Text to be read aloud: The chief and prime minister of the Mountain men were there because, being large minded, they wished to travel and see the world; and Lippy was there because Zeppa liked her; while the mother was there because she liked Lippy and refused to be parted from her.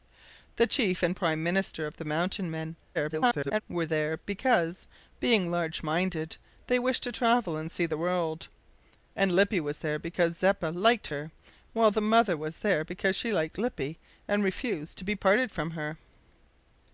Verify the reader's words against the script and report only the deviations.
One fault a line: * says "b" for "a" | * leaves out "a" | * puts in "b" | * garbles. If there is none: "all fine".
* garbles